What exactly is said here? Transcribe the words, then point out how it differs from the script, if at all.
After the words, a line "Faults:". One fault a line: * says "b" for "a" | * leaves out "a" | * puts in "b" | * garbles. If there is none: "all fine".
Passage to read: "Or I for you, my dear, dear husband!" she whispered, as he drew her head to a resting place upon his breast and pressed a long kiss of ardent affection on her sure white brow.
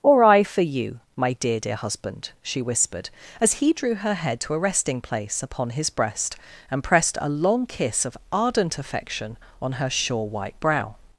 "Or I for you, my dear, dear husband!" she whispered, as he drew her head to a resting place upon his breast and pressed a long kiss of ardent affection on her sure white brow.
Faults:
all fine